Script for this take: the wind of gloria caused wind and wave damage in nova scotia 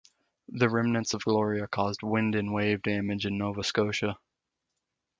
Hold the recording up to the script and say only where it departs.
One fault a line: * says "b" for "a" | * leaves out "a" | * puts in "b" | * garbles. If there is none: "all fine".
* says "remnants" for "wind"